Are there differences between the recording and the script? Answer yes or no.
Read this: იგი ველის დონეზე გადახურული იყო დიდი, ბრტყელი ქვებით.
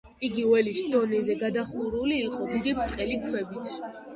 no